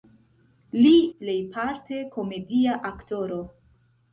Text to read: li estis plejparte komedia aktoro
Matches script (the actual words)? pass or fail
fail